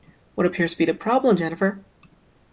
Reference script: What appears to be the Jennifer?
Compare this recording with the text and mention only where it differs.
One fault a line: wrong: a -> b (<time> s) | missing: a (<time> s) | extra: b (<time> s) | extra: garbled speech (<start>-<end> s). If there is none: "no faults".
extra: problem (0.9 s)